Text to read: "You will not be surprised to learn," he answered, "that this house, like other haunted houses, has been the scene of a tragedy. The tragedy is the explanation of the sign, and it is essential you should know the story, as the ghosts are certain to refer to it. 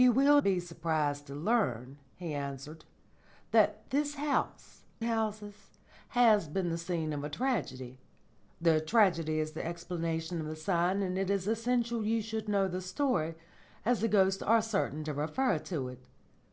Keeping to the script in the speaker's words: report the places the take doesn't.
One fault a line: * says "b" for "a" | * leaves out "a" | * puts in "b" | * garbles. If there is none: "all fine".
* leaves out "not"
* leaves out "like other haunted"